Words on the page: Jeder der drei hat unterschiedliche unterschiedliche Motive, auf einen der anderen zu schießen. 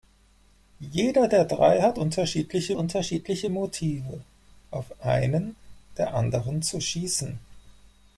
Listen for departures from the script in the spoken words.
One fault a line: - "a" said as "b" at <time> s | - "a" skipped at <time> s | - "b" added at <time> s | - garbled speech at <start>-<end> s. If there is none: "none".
none